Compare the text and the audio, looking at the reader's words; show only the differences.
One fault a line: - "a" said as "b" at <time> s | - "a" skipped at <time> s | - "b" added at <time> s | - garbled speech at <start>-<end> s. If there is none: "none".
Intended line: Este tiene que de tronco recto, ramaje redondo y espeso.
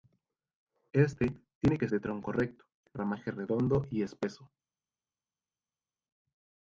none